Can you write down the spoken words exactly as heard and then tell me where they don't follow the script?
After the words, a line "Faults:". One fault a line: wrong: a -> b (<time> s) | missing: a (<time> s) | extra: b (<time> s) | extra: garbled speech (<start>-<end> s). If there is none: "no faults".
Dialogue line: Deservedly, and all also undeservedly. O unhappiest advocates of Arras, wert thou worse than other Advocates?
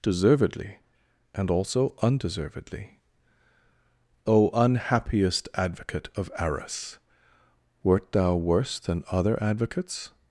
Deservedly, and also undeservedly. O unhappiest advocate of Arras, wert thou worse than other Advocates?
Faults:
missing: all (1.5 s)
wrong: advocates -> advocate (5.5 s)